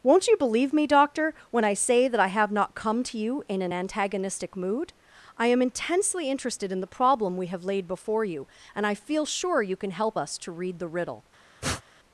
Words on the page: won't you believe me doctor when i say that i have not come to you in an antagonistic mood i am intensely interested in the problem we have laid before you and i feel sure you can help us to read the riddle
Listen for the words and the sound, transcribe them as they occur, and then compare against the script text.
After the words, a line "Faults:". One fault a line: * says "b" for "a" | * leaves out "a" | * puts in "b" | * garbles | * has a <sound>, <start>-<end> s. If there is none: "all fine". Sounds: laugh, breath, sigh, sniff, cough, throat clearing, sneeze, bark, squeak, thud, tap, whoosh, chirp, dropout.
won't you believe me doctor when i say that i have not come to you in an antagonistic mood i am intensely interested in the problem we have laid before you and i feel sure you can help us to read the riddle
Faults:
* has a sniff, 11.6-11.8 s